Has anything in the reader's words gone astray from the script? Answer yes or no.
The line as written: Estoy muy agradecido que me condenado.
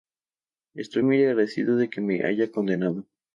yes